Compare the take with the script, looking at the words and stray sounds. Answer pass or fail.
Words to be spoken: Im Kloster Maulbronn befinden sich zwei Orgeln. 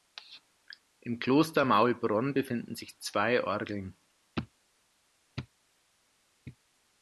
pass